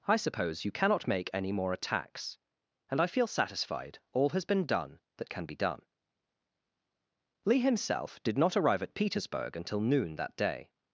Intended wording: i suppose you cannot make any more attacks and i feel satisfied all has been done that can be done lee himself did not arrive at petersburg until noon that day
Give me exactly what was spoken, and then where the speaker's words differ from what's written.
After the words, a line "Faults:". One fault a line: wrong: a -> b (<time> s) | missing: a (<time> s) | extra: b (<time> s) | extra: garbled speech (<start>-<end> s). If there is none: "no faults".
i suppose you cannot make any more attacks and i feel satisfied all has been done that can be done lee himself did not arrive at petersburg until noon that day
Faults:
no faults